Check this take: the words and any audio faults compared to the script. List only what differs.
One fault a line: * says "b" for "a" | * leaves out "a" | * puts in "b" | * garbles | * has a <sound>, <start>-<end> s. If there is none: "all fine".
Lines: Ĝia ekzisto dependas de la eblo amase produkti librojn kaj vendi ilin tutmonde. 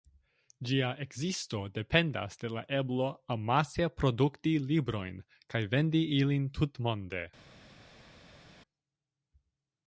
all fine